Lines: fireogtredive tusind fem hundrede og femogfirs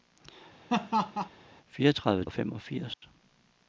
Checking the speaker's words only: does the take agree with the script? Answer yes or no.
no